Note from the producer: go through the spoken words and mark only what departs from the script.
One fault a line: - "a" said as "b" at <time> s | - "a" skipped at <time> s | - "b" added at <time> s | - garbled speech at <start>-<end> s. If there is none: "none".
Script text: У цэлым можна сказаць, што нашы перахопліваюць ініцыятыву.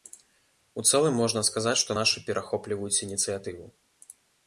none